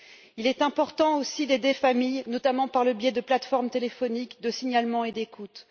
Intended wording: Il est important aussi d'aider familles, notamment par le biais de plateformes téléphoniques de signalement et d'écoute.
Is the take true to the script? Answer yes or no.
yes